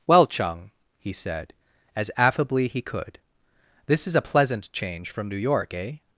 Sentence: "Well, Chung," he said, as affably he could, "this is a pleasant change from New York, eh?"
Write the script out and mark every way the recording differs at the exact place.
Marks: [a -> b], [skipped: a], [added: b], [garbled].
"Well, Chung," he said, as affably he could, "this is a pleasant change from New York, eh?"